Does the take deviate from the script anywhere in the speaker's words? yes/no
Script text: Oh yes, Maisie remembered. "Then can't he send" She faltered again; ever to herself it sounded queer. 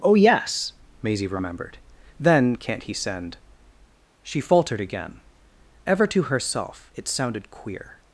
no